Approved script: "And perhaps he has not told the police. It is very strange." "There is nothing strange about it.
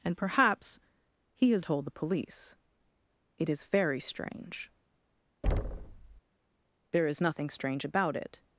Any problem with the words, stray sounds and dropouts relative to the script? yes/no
yes